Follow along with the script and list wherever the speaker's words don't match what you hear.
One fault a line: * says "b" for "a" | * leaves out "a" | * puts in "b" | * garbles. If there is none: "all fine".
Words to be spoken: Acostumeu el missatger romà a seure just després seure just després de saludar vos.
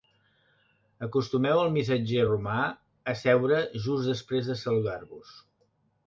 * leaves out "seure just després"